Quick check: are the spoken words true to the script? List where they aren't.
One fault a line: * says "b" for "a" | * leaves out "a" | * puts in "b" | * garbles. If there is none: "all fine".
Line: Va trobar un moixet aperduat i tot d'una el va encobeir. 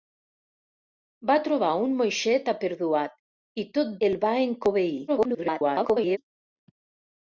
* leaves out "d'una"
* garbles